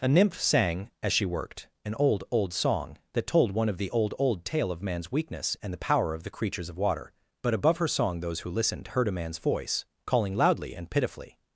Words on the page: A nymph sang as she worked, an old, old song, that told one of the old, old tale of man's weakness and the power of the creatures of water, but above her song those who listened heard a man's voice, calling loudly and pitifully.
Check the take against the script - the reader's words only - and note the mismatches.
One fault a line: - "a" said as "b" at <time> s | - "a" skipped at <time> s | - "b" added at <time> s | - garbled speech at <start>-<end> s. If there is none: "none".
none